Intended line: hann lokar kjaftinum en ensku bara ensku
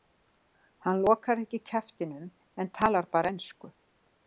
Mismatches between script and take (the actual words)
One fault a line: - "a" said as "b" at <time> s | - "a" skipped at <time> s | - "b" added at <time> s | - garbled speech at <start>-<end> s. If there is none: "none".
- "ekki" added at 1.4 s
- "ensku" said as "talar" at 2.8 s